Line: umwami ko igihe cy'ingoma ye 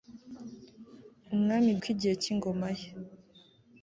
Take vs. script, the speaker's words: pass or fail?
pass